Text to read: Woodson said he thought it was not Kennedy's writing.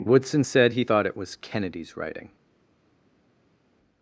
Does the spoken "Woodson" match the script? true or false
true